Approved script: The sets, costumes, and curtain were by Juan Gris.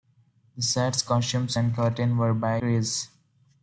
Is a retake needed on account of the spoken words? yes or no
yes